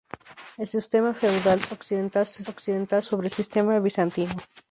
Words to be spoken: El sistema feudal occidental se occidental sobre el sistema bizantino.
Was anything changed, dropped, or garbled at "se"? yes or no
no